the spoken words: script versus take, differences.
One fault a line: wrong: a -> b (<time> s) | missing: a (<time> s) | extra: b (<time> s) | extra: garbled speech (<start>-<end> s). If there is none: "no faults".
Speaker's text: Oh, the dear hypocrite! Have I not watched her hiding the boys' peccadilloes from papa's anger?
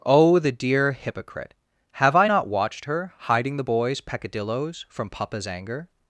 no faults